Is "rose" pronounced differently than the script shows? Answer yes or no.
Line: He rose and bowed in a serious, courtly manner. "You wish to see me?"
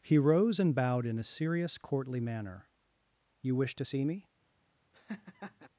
no